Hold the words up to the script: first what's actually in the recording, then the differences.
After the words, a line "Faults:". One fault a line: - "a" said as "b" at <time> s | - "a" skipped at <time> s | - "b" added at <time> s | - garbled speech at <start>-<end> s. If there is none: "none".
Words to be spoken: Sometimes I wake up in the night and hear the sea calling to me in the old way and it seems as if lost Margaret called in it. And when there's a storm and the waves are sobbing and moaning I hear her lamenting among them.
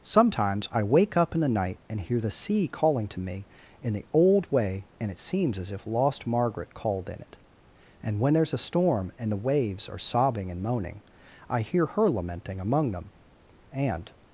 Sometimes I wake up in the night and hear the sea calling to me in the old way and it seems as if lost Margaret called in it. And when there's a storm and the waves are sobbing and moaning I hear her lamenting among them. And
Faults:
- "And" added at 13.7 s